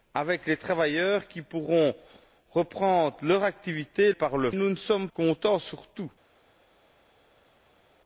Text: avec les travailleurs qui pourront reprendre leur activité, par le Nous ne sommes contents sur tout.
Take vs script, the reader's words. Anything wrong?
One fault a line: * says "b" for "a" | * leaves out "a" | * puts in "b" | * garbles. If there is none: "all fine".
all fine